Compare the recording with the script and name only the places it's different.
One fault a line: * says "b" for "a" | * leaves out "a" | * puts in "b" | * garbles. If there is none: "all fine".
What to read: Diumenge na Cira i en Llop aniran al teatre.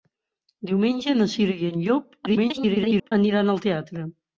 * garbles